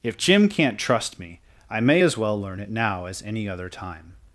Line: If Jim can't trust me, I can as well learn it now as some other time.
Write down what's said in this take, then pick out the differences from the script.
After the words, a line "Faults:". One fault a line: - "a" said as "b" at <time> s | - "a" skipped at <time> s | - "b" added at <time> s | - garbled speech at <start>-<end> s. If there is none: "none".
If Jim can't trust me, I may as well learn it now as any other time.
Faults:
- "can" said as "may" at 1.8 s
- "some" said as "any" at 3.2 s